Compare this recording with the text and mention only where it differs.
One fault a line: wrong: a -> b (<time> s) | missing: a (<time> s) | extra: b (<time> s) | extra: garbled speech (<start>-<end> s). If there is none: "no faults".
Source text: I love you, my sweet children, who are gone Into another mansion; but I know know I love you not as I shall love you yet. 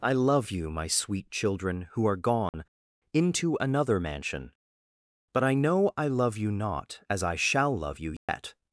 missing: know (5.9 s)